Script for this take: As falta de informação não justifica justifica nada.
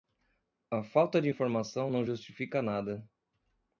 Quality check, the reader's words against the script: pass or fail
fail